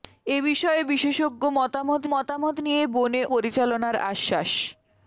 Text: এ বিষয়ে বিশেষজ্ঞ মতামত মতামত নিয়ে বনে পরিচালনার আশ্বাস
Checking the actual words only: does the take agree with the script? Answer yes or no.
yes